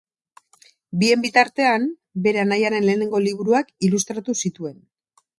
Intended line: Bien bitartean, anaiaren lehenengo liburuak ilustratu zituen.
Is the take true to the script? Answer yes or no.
no